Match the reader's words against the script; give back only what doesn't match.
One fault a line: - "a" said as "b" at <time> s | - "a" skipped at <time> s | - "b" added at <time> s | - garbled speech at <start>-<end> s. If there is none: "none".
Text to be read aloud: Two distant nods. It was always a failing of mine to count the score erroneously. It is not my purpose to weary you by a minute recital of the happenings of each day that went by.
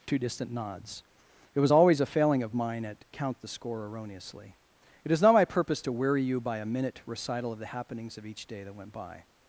- "to" said as "at" at 2.9 s